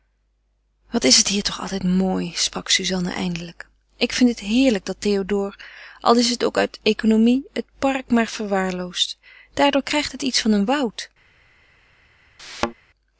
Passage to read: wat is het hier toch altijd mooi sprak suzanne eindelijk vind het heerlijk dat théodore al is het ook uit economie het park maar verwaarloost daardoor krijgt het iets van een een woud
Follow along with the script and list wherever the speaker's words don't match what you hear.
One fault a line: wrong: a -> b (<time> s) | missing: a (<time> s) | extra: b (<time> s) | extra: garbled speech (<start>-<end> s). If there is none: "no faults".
extra: ik (4.0 s)
missing: een (10.7 s)